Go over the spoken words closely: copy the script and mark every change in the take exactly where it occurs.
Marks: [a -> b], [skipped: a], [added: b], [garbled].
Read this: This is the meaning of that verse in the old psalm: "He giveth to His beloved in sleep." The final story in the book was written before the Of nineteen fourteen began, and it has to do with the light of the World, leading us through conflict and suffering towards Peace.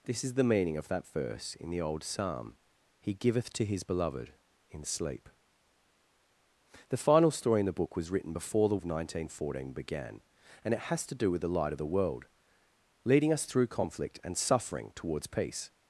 This is the meaning of that verse in the old psalm: "He giveth to His beloved in sleep." The final story in the book was written before the Of nineteen fourteen began, and it has to do with the light of the World, leading us through conflict and suffering towards Peace.